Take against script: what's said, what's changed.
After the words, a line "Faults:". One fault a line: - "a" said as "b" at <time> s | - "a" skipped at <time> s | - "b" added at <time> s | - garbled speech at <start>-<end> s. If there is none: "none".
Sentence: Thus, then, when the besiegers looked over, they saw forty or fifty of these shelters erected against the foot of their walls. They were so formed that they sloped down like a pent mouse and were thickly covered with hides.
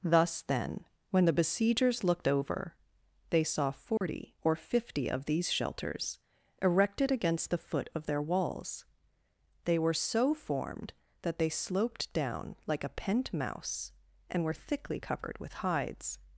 Thus, then, when the besiegers looked over, they saw forty or fifty of these shelters erected against the foot of their walls. They were so formed that they sloped down like a pent mouse and were thickly covered with hides.
Faults:
none